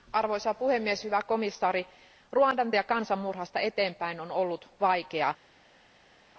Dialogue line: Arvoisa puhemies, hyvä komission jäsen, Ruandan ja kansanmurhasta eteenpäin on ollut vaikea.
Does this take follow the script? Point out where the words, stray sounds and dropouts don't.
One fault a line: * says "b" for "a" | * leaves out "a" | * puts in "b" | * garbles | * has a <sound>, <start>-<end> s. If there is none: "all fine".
all fine